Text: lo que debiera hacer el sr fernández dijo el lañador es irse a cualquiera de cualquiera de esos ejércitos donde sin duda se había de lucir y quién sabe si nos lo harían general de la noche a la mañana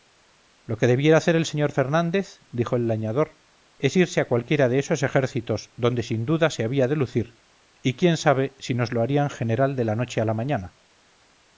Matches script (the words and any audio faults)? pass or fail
fail